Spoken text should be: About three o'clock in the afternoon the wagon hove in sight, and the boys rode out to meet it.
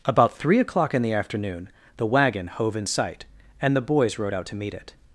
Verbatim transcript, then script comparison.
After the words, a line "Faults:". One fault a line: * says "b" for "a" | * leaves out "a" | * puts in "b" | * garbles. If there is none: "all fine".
About three o'clock in the afternoon the wagon hove in sight, and the boys rode out to meet it.
Faults:
all fine